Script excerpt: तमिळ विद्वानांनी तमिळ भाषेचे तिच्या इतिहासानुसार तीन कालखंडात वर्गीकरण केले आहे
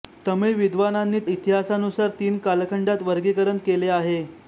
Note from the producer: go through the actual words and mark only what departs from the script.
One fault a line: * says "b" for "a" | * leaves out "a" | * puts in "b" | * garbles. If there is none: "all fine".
* leaves out "तमिळ भाषेचे तिच्या"